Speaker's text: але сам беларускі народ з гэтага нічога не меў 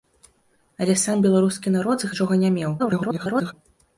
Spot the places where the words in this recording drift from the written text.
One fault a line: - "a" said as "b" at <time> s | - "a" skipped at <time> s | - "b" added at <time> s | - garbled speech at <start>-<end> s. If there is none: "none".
- "гэтага" skipped at 2.1 s
- garbled speech at 2.8-3.5 s